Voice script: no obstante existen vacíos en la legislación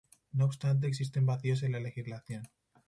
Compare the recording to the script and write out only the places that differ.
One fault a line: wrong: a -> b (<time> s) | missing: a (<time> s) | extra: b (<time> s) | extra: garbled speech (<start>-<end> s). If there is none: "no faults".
no faults